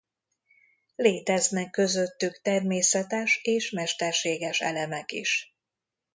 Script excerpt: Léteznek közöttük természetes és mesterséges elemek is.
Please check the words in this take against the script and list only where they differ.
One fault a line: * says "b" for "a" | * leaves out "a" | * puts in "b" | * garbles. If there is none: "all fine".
all fine